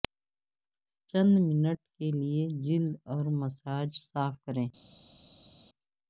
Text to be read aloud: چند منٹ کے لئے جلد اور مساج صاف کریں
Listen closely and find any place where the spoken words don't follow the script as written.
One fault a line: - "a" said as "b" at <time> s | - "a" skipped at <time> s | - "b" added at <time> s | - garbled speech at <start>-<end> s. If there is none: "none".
none